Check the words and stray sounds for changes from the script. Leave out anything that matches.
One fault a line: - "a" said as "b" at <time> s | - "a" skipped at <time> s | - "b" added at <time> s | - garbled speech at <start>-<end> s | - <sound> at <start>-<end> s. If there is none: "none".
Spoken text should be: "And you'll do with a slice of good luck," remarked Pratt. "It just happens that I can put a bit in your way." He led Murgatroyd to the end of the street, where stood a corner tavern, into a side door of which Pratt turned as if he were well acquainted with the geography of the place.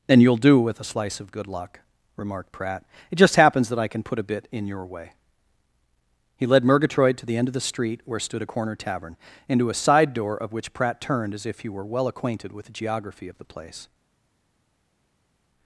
none